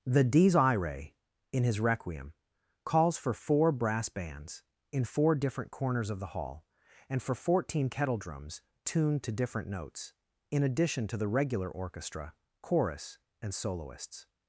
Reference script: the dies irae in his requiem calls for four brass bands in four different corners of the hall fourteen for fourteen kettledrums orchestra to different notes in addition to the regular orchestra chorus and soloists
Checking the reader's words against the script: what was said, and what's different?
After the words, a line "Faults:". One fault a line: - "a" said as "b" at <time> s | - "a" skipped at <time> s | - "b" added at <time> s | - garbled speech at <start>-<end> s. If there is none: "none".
the dies irae in his requiem calls for four brass bands in four different corners of the hall and for fourteen kettledrums tuned to different notes in addition to the regular orchestra chorus and soloists
Faults:
- "fourteen" said as "and" at 7.1 s
- "orchestra" said as "tuned" at 8.9 s